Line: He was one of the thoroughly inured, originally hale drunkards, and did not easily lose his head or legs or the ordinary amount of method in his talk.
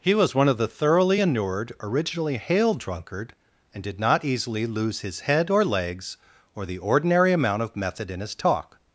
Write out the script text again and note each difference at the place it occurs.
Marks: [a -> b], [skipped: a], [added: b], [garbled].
He was one of the thoroughly inured, originally hale [drunkards, -> drunkard] and did not easily lose his head or legs or the ordinary amount of method in his talk.